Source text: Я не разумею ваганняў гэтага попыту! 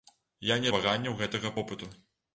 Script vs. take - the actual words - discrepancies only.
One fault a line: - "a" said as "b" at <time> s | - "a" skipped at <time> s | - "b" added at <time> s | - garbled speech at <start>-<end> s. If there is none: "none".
- "разумею" skipped at 0.7 s